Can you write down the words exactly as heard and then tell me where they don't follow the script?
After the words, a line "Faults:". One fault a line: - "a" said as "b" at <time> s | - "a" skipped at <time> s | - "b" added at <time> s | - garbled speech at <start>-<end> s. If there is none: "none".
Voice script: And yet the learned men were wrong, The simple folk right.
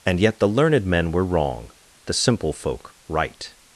And yet the learned men were wrong, The simple folk right.
Faults:
none